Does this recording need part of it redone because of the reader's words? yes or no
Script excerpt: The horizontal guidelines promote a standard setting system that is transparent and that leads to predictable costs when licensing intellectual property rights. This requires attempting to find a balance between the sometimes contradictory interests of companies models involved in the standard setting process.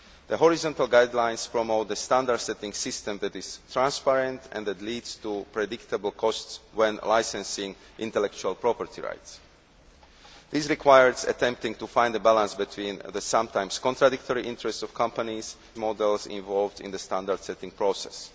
no